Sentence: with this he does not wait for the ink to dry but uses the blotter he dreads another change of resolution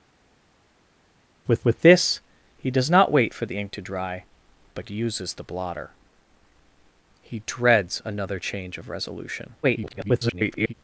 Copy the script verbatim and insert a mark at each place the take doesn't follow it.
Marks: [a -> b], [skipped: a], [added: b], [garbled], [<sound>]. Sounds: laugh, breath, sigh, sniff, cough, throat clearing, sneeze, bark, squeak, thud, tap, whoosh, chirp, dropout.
with [added: with] this he does not wait for the ink to dry but uses the blotter he dreads another change of resolution [garbled]